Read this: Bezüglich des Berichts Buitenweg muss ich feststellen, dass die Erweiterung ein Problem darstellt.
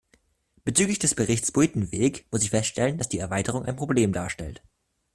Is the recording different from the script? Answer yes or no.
no